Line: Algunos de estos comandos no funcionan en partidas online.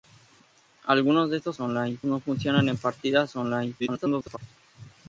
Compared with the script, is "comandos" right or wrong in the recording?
wrong